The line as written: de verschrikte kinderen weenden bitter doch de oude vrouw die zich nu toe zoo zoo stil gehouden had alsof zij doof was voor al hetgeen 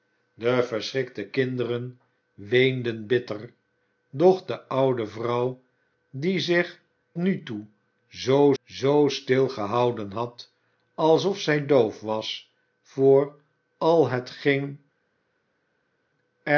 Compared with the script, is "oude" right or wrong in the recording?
right